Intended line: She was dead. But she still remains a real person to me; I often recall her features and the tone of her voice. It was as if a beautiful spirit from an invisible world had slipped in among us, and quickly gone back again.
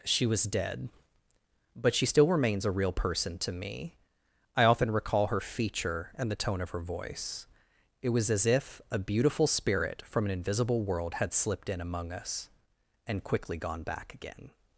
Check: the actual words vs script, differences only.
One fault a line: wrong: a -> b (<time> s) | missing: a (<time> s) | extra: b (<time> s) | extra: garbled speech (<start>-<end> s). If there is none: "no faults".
wrong: features -> feature (5.4 s)